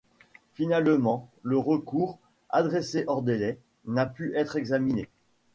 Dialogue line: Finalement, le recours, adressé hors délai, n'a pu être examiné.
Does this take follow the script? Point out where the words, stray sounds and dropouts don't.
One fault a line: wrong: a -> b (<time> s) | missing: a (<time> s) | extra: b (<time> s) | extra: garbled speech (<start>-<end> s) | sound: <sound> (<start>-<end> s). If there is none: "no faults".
no faults